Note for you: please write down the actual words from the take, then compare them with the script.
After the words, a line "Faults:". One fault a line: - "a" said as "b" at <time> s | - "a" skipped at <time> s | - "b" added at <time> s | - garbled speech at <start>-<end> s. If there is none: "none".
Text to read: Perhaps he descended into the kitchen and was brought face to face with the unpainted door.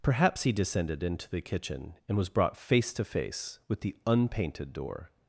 Perhaps he descended into the kitchen and was brought face to face with the unpainted door.
Faults:
none